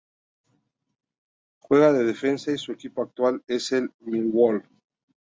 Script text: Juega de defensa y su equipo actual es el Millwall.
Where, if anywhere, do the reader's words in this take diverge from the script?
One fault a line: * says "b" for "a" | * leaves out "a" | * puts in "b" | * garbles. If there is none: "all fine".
all fine